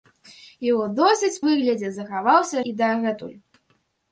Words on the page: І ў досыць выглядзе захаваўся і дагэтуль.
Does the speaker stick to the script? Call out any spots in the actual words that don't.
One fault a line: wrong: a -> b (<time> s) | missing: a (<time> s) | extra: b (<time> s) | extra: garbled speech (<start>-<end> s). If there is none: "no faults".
no faults